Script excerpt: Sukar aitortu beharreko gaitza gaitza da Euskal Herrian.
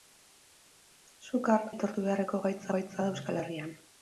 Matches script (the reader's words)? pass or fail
pass